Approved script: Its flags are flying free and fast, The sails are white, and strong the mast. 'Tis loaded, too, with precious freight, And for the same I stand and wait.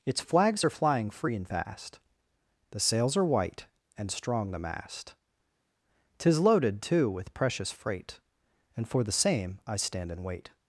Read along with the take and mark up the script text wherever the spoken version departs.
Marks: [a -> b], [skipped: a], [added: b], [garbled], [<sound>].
Its flags are flying free and fast, The sails are white, and strong the mast. 'Tis loaded, too, with precious freight, And for the same I stand and wait.